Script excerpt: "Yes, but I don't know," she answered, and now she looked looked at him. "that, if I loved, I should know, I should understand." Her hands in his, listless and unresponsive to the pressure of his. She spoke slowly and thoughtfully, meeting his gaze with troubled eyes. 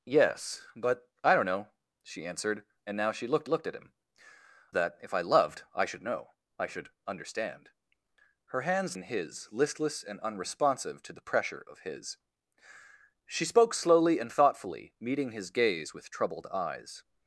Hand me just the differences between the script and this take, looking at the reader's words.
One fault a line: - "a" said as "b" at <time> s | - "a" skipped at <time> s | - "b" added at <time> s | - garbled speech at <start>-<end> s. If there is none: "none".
none